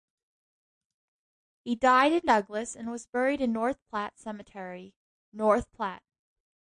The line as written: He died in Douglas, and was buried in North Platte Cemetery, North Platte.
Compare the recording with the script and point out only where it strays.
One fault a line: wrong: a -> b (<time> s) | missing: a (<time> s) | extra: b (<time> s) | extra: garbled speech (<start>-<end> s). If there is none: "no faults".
no faults